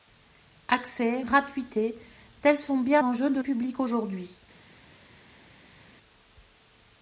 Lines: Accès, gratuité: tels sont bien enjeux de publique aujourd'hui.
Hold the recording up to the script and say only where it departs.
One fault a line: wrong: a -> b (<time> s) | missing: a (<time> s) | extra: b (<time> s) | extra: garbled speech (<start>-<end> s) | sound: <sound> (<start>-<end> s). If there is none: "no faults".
no faults